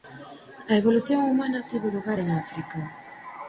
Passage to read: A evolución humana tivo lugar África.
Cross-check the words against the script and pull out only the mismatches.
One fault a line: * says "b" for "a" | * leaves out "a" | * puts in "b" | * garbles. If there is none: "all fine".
* puts in "en"